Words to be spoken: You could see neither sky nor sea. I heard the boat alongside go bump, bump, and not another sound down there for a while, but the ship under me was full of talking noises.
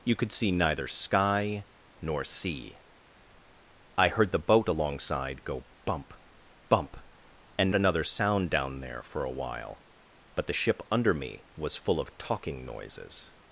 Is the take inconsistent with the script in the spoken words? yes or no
yes